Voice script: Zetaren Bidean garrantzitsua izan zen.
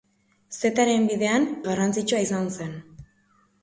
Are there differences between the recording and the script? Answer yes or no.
no